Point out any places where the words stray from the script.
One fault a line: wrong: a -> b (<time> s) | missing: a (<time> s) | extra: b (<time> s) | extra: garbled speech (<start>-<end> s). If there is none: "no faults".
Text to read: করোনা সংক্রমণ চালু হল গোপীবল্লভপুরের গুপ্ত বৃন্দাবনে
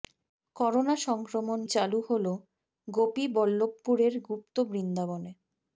no faults